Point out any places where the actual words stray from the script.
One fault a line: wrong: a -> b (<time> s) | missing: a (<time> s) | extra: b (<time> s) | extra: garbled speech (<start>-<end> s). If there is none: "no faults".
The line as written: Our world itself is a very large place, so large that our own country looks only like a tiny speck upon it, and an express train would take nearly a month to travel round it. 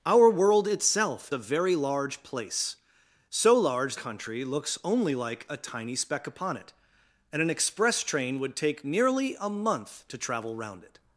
missing: is (1.3 s)
missing: that our own (4.0 s)